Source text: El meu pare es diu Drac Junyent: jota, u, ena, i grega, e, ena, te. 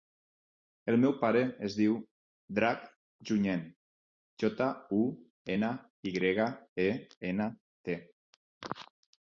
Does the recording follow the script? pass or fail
pass